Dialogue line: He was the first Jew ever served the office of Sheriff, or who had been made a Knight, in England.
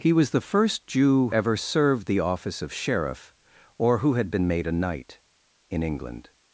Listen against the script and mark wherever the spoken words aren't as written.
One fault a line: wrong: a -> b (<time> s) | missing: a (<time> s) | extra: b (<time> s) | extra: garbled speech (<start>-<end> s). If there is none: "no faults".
no faults